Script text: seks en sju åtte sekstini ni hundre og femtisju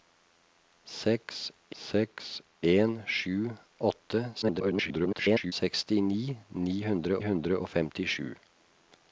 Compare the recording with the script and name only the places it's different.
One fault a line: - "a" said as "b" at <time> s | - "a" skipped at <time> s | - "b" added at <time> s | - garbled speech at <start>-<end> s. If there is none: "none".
- "seks" added at 1.8 s
- garbled speech at 4.4-5.5 s
- "hundre" added at 7.3 s